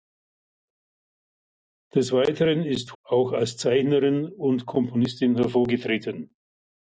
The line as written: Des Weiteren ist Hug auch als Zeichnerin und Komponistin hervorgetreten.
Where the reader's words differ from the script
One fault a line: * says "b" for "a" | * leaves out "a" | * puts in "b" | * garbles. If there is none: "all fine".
* leaves out "Hug"